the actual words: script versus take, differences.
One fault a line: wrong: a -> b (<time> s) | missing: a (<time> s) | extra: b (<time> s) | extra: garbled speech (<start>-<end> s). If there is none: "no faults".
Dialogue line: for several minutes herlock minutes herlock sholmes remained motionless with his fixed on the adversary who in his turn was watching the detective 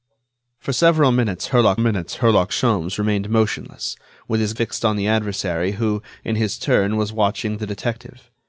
no faults